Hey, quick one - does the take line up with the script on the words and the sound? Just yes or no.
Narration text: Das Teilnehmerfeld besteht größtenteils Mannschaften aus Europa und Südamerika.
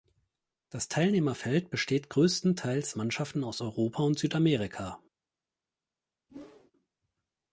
no